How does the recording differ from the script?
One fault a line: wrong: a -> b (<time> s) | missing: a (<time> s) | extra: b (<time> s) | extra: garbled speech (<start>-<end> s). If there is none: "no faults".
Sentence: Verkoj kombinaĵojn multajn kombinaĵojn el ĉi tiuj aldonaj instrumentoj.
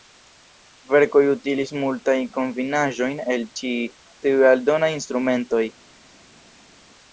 wrong: kombinaĵojn -> utilis (1.3 s)